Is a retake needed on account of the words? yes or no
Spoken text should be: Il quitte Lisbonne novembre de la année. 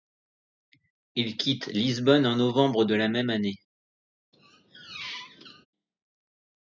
yes